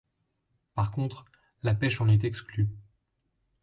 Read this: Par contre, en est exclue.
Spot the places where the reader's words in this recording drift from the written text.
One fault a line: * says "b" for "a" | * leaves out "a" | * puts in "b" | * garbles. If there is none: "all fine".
* puts in "la pêche"